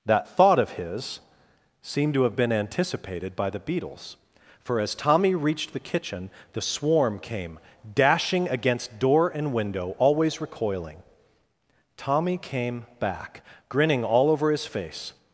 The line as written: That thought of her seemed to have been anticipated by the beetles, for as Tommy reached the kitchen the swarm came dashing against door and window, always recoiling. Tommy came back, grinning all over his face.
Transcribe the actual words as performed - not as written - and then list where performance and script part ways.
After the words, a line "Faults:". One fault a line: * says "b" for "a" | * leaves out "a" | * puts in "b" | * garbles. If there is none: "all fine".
That thought of his seemed to have been anticipated by the beetles, for as Tommy reached the kitchen the swarm came dashing against door and window, always recoiling. Tommy came back, grinning all over his face.
Faults:
* says "his" for "her"